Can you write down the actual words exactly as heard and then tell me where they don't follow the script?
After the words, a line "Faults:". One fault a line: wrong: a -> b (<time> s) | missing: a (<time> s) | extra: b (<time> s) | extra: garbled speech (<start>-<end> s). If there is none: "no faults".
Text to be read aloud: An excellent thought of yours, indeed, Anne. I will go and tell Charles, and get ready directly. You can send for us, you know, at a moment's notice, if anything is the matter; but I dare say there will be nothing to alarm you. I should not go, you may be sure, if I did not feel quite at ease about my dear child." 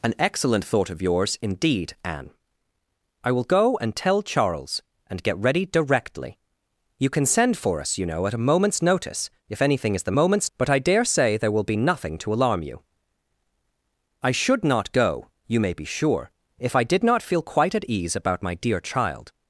An excellent thought of yours, indeed, Anne. I will go and tell Charles, and get ready directly. You can send for us, you know, at a moment's notice, if anything is the moment's; but I dare say there will be nothing to alarm you. I should not go, you may be sure, if I did not feel quite at ease about my dear child."
Faults:
wrong: matter -> moment's (10.2 s)